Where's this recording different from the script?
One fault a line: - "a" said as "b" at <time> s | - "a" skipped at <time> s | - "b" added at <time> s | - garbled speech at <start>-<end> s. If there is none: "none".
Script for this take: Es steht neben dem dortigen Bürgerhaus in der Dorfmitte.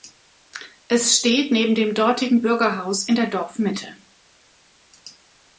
none